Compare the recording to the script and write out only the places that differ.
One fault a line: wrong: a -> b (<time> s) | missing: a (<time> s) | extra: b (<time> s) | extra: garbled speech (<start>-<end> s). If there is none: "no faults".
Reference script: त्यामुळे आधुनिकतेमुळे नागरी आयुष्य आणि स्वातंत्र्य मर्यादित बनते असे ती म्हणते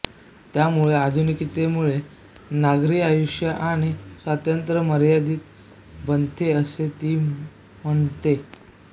no faults